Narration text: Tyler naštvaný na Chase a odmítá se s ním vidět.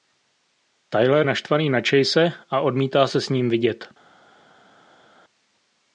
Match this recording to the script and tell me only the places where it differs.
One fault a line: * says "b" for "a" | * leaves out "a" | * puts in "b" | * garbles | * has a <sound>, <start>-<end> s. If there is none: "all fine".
all fine